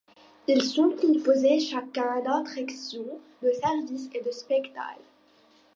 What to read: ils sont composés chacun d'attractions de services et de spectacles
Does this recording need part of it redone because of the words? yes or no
no